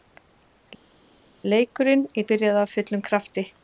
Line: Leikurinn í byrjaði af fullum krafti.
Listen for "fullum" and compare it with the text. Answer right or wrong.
right